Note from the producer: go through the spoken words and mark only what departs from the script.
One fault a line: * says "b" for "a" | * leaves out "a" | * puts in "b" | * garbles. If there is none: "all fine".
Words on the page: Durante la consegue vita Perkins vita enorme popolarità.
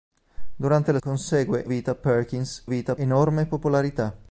all fine